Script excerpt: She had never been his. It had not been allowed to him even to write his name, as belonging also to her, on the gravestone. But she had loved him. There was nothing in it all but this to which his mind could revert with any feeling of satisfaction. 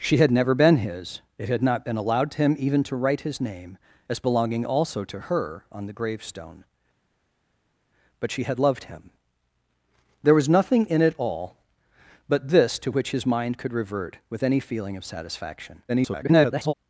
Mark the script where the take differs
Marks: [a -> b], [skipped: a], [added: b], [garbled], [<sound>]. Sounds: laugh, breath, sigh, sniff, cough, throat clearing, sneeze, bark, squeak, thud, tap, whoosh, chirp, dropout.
She had never been his. It had not been allowed to him even to write his name, as belonging also to her, on the gravestone. But she had loved him. There was nothing in it all but this to which his mind could revert with any feeling of satisfaction. [garbled]